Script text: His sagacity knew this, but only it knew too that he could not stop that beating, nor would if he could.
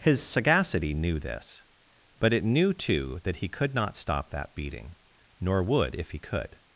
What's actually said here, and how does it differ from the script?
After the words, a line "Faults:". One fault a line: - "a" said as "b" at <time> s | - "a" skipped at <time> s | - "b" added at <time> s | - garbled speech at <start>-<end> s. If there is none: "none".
His sagacity knew this, but it knew too that he could not stop that beating, nor would if he could.
Faults:
- "only" skipped at 2.3 s